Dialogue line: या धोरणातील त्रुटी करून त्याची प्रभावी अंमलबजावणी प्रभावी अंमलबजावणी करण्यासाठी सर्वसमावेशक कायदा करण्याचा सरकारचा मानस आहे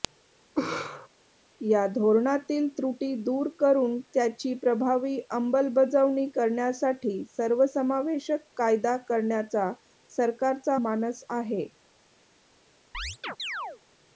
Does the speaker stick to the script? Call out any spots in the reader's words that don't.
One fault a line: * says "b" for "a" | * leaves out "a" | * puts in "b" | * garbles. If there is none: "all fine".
* puts in "दूर"
* leaves out "प्रभावी अंमलबजावणी"